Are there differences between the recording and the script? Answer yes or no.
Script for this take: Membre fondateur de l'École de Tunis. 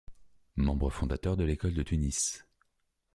no